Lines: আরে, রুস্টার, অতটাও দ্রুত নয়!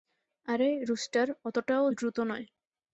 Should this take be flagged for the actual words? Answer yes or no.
no